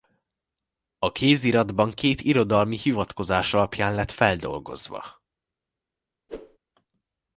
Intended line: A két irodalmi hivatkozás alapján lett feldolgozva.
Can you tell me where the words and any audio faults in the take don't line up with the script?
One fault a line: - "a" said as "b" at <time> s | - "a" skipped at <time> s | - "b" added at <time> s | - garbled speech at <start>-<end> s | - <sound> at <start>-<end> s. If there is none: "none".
- "kéziratban" added at 1.1 s
- whoosh at 6.3-6.6 s